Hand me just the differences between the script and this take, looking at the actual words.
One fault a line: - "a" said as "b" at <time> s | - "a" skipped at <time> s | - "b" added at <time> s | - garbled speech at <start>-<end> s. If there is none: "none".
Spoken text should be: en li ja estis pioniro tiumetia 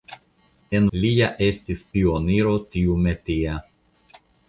none